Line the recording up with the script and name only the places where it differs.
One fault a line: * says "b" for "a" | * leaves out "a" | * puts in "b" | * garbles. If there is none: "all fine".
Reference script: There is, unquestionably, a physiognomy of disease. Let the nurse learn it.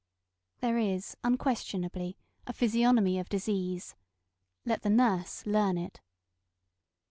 all fine